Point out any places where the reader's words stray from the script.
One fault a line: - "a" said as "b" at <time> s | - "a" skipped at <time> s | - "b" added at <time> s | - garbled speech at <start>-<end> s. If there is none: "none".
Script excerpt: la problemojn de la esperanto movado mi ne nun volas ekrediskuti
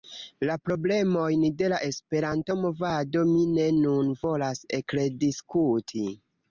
none